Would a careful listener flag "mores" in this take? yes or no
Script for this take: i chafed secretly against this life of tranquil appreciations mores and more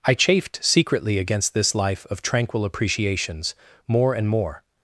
yes